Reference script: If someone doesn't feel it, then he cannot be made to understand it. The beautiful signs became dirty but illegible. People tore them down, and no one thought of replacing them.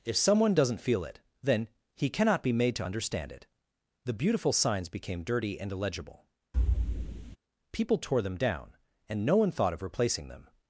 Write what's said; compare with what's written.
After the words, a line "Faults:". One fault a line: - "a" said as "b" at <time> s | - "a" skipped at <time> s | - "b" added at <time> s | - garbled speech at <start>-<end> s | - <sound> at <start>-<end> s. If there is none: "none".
If someone doesn't feel it, then he cannot be made to understand it. The beautiful signs became dirty and illegible. People tore them down, and no one thought of replacing them.
Faults:
- "but" said as "and" at 5.6 s
- thud at 6.5-7.4 s